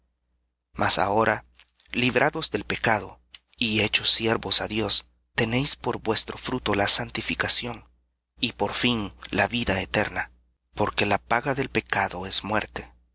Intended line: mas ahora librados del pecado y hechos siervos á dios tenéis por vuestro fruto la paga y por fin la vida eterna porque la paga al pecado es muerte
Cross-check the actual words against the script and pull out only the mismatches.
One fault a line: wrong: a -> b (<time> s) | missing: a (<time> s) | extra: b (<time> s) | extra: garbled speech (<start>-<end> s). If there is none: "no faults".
wrong: paga -> santificación (6.9 s)
wrong: al -> del (11.6 s)